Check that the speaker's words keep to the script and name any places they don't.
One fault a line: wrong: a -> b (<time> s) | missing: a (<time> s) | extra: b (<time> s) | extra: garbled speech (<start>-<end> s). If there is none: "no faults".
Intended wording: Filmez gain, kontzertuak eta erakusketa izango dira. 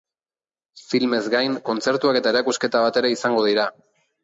extra: bat ere (2.9 s)